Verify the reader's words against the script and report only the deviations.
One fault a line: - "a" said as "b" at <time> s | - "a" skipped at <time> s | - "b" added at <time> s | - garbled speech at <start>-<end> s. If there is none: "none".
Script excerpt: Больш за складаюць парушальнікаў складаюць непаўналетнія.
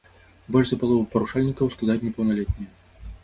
- "складаюць" said as "палову" at 0.8 s